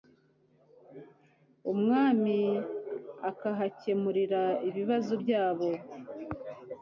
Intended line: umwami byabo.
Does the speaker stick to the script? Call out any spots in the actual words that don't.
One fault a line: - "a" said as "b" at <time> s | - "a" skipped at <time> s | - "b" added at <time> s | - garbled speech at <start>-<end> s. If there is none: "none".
- "akahakemurira ibibazo" added at 3.3 s